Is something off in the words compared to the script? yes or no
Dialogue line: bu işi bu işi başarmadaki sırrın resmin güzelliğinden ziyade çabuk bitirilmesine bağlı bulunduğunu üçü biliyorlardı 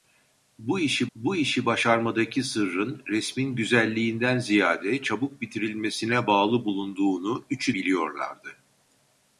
no